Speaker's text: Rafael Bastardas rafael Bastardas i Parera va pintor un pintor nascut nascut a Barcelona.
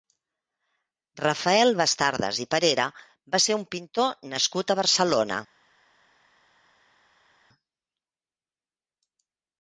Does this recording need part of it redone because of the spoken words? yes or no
yes